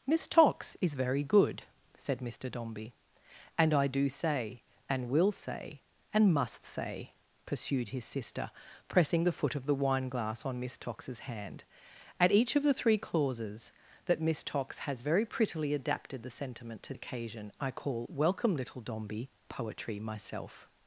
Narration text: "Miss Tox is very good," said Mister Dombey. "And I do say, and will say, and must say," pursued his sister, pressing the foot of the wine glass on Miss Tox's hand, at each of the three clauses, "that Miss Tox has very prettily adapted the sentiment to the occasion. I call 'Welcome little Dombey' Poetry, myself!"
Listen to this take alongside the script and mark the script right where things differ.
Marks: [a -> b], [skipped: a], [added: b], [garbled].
"Miss Tox is very good," said Mister Dombey. "And I do say, and will say, and must say," pursued his sister, pressing the foot of the wine glass on Miss Tox's hand, at each of the three clauses, "that Miss Tox has very prettily adapted the sentiment to [skipped: the] occasion. I call 'Welcome little Dombey' Poetry, myself!"